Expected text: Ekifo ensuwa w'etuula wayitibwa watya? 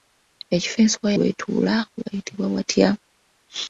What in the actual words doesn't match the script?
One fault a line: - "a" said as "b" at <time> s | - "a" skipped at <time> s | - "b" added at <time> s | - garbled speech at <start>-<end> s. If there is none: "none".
none